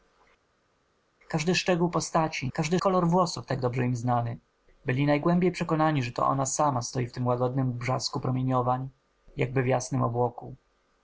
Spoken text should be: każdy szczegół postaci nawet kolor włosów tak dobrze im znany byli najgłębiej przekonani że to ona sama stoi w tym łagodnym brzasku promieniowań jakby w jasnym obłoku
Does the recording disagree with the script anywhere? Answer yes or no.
yes